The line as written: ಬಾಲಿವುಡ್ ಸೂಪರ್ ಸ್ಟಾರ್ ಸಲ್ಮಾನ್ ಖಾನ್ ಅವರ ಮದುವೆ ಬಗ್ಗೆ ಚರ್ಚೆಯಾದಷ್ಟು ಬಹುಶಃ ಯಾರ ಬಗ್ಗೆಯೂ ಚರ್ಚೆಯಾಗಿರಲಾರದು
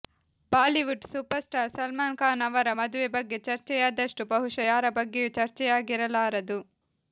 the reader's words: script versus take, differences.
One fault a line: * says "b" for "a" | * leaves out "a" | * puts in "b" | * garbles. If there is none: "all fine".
all fine